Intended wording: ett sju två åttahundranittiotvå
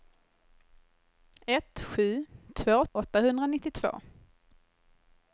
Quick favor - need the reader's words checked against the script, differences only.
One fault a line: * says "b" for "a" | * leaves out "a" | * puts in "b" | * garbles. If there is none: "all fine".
all fine